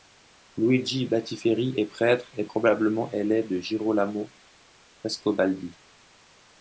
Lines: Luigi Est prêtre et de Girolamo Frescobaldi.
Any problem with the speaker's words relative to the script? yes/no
yes